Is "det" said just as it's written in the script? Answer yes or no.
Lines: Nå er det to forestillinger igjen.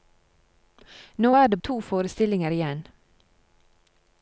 yes